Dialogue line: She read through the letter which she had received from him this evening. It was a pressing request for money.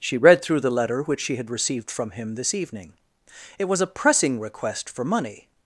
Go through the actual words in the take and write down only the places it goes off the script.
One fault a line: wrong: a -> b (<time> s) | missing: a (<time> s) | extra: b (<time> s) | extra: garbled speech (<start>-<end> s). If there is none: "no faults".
no faults